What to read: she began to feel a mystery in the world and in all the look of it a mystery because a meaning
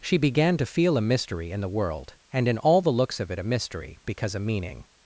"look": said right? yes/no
no